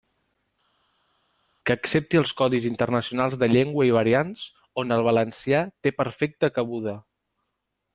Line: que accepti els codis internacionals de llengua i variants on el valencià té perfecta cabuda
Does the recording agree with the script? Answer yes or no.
yes